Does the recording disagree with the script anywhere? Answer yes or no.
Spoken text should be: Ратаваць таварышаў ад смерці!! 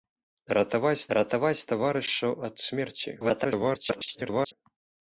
yes